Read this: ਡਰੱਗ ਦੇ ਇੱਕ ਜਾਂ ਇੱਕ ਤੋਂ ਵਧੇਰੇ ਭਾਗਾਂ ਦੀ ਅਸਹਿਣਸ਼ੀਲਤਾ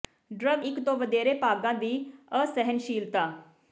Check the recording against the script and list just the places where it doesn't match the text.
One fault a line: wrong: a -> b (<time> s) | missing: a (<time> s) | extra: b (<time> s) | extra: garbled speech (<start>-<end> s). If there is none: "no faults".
missing: ਦੇ ਇੱਕ ਜਾਂ (0.6 s)